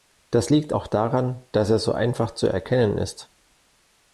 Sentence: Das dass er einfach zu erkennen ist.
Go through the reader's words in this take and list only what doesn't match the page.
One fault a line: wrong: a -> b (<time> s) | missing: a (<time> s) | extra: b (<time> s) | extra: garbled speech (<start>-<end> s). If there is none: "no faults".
extra: liegt auch daran (0.5 s)
extra: so (1.8 s)